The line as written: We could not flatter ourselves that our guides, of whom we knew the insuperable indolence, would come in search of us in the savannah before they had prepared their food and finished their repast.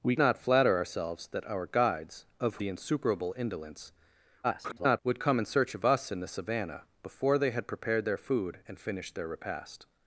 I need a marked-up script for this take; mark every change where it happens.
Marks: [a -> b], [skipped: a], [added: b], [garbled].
We [skipped: could] not flatter ourselves that our guides, of [skipped: whom we knew] the insuperable indolence, [garbled] would come in search of us in the savannah before they had prepared their food and finished their repast.